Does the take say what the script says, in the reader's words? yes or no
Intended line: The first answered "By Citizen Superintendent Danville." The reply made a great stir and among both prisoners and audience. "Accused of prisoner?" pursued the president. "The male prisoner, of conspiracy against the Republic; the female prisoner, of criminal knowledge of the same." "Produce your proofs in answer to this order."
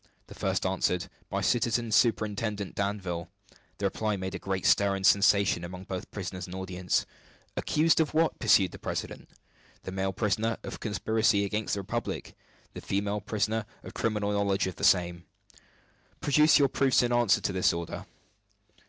no